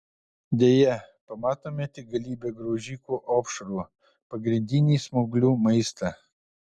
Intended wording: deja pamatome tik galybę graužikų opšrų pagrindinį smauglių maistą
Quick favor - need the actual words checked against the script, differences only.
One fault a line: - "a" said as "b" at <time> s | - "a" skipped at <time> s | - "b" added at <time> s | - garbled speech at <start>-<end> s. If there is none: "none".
none